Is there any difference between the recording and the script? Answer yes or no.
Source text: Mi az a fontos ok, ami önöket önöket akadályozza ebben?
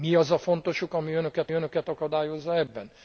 no